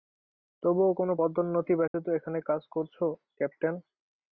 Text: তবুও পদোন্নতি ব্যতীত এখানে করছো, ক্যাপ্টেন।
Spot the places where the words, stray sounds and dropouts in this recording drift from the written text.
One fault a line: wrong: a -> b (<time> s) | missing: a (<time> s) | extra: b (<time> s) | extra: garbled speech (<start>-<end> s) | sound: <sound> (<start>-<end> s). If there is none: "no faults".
extra: কোনো (0.9 s)
sound: dropout (1.9-1.9 s)
extra: কাজ (2.5 s)